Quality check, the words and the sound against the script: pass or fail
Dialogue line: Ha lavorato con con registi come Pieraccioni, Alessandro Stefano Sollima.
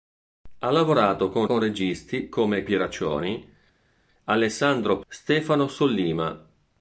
pass